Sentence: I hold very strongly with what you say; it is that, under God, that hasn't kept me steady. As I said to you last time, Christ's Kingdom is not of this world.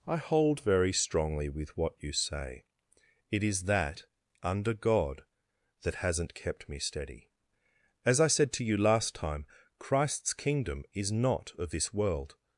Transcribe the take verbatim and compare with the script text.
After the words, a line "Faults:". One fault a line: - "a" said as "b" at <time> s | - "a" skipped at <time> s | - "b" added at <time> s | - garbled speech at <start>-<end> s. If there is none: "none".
I hold very strongly with what you say; it is that, under God, that hasn't kept me steady. As I said to you last time, Christ's Kingdom is not of this world.
Faults:
none